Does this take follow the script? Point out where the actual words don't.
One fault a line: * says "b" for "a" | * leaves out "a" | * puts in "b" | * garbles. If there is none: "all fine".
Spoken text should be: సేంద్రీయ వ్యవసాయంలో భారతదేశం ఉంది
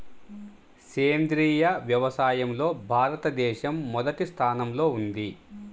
* puts in "మొదటి స్థానంలో"